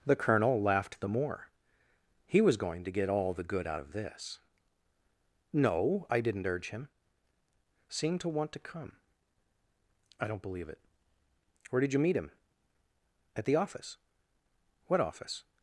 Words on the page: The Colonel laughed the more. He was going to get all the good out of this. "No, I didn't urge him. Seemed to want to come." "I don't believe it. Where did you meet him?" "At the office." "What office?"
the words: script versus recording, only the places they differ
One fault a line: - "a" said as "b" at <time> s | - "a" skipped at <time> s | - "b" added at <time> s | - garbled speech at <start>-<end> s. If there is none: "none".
none